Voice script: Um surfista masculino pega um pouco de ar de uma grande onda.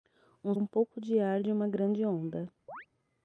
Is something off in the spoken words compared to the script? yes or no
yes